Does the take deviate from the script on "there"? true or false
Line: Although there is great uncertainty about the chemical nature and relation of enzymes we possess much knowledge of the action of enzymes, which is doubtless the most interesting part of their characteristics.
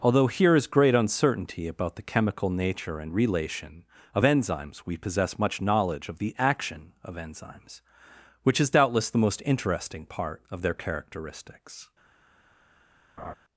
true